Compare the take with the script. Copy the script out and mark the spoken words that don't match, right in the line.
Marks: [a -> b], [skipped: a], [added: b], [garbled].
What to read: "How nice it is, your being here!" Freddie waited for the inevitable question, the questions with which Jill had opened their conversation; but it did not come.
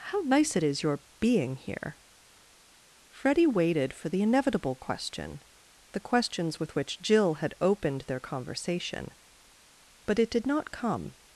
"How nice it is, your being here!" Freddie waited for the inevitable question, the questions with which Jill had opened their conversation; but it did not come.